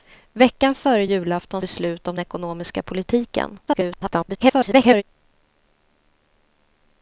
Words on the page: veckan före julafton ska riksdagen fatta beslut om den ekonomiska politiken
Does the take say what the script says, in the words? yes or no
no